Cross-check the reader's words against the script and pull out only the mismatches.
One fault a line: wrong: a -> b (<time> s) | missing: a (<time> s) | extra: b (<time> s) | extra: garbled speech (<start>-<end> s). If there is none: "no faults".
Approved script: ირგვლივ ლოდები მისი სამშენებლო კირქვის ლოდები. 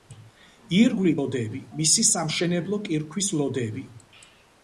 no faults